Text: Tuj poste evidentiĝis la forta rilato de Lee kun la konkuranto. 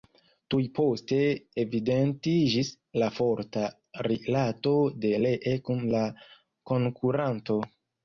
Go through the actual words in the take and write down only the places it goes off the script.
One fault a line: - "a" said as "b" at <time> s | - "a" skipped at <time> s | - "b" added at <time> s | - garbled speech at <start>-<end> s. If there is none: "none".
none